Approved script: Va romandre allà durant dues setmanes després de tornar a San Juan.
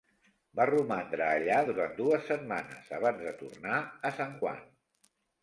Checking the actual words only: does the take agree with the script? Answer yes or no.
no